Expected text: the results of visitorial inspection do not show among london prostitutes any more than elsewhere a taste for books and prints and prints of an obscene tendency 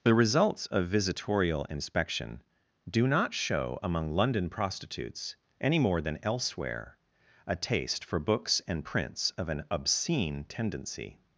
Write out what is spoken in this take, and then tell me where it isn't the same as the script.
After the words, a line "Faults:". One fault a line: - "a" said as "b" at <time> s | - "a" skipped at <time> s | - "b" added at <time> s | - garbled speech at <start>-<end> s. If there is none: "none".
the results of visitorial inspection do not show among london prostitutes any more than elsewhere a taste for books and prints of an obscene tendency
Faults:
- "and prints" skipped at 9.3 s